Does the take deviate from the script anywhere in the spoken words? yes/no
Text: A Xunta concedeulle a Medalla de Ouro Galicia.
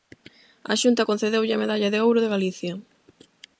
yes